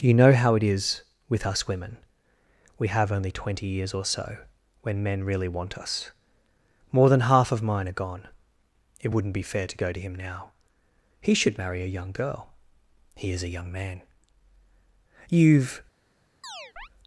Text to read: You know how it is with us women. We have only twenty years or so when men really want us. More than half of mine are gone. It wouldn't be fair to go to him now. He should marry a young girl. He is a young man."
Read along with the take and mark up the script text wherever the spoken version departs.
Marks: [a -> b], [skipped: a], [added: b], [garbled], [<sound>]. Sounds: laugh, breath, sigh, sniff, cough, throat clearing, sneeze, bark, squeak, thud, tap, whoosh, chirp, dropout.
You know how it is with us women. We have only twenty years or so when men really want us. More than half of mine are gone. It wouldn't be fair to go to him now. He should marry a young girl. He is a young man." [added: You've] [chirp]